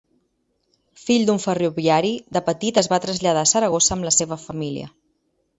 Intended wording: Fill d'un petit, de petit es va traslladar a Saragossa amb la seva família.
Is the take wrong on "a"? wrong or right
right